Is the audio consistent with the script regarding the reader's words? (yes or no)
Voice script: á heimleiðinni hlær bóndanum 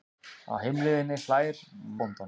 yes